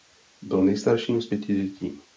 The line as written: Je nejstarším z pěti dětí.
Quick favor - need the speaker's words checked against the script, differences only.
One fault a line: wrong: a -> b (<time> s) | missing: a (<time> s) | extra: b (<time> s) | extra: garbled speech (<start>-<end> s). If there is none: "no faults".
wrong: Je -> Byl (0.4 s)